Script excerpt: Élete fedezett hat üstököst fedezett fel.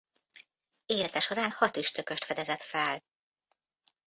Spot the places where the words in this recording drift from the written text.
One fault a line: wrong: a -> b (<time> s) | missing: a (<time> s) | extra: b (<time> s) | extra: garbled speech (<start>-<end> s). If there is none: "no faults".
wrong: fedezett -> során (1.2 s)